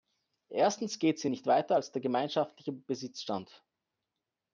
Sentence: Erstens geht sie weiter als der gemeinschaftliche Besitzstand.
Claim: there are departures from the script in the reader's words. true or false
true